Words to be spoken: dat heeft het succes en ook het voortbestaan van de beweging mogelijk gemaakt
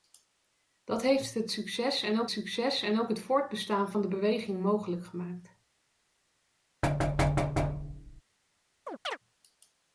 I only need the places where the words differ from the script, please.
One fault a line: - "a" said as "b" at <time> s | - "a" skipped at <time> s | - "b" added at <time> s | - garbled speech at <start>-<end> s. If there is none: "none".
- "succes en ook" added at 2.3 s